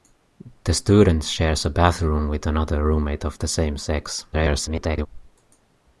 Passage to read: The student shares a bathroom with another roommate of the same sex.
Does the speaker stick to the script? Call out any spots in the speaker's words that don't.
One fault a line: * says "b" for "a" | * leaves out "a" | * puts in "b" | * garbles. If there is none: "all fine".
* garbles